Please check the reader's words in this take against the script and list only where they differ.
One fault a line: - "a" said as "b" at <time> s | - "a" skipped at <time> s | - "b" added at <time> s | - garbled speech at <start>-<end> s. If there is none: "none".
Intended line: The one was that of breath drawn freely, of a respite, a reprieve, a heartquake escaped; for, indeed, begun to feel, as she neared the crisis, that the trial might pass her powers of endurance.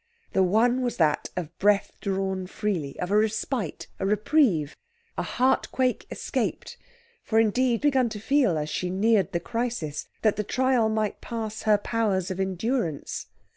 none